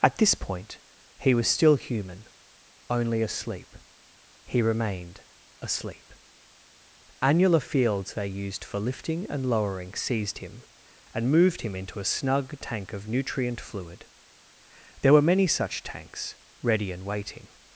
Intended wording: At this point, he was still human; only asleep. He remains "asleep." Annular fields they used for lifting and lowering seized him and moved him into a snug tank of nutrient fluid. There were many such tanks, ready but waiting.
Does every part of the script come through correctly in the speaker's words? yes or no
no